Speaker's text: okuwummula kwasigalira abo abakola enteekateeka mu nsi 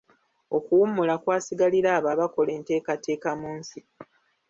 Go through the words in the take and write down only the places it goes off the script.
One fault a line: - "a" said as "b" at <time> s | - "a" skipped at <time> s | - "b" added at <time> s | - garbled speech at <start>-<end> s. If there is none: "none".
none